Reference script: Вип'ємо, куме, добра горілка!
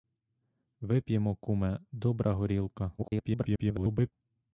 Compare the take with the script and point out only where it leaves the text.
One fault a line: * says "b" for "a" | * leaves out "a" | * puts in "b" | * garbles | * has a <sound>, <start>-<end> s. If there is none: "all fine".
* garbles